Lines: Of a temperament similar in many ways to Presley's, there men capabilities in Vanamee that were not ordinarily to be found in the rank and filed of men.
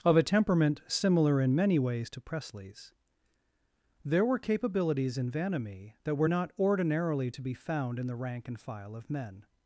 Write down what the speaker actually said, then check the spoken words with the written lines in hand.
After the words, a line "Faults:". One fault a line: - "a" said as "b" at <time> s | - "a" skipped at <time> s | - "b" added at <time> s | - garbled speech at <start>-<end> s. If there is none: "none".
Of a temperament similar in many ways to Presley's, there were capabilities in Vanamee that were not ordinarily to be found in the rank and file of men.
Faults:
- "men" said as "were" at 4.2 s
- "filed" said as "file" at 8.6 s